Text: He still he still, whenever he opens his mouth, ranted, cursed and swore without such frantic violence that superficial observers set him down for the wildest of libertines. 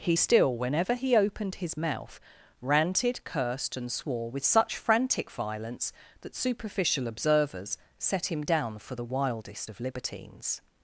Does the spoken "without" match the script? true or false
false